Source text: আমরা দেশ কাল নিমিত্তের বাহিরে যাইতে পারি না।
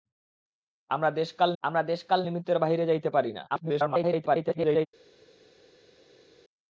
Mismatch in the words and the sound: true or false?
true